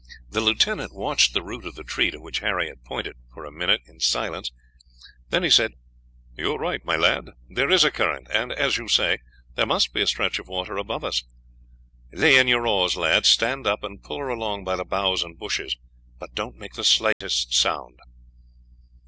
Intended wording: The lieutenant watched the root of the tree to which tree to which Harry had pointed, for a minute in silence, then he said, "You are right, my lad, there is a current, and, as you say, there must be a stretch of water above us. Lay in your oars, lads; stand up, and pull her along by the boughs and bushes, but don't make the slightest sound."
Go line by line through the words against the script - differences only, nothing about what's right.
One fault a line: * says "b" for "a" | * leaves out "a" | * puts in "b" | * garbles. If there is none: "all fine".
* leaves out "tree to which"